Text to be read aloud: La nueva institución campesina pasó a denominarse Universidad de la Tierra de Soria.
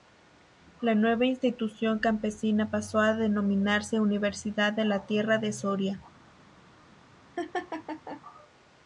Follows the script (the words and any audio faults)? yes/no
no